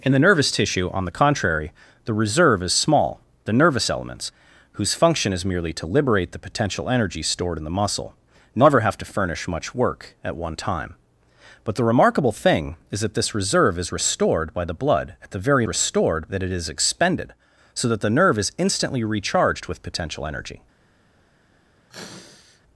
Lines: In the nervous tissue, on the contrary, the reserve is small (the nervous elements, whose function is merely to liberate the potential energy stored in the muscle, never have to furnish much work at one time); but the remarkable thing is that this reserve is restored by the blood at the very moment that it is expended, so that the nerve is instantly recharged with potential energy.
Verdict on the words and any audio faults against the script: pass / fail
fail